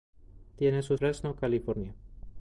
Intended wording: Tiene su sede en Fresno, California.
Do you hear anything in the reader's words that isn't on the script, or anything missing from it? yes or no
yes